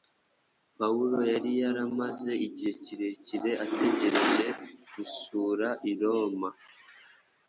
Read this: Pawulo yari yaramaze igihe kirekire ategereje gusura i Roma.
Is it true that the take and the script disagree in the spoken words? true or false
false